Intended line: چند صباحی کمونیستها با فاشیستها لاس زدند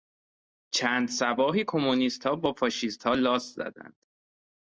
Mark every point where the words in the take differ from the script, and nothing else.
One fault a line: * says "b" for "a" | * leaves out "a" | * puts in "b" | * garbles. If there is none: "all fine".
all fine